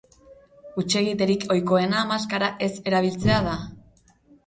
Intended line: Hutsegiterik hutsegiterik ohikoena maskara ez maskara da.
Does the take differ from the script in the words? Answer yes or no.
yes